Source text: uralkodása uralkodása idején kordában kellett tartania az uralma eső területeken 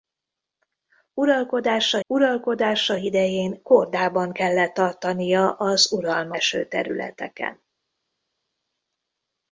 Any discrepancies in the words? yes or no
no